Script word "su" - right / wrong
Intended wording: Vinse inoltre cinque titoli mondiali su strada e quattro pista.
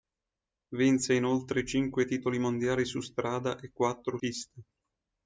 right